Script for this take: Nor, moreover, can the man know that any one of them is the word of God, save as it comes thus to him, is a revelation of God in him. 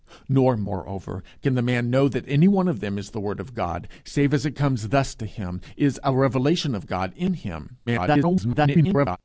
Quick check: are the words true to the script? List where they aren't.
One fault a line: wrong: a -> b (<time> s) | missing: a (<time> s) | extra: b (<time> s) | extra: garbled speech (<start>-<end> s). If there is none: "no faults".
extra: garbled speech (7.9-9.2 s)